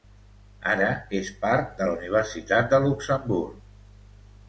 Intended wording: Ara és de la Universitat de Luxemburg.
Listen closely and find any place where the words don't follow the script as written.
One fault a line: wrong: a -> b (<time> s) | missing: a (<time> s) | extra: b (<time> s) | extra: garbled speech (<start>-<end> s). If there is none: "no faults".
extra: part (1.4 s)